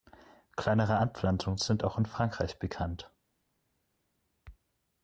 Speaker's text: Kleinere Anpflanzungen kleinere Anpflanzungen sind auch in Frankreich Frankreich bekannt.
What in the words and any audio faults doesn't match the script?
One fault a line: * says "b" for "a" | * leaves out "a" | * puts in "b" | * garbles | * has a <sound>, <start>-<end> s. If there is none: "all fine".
* leaves out "kleinere Anpflanzungen"
* leaves out "Frankreich"